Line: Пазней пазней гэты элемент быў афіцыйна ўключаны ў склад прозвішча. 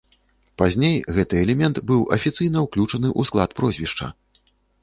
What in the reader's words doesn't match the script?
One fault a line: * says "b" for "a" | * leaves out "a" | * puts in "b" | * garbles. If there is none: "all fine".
* leaves out "пазней"